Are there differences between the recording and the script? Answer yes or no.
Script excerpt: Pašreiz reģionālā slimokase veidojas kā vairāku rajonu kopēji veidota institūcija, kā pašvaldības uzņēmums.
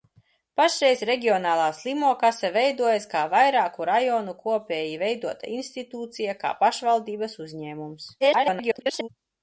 yes